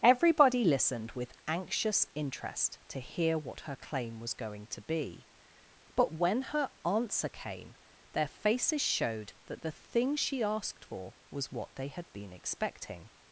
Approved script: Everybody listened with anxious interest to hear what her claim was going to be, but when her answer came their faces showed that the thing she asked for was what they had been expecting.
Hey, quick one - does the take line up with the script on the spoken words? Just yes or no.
yes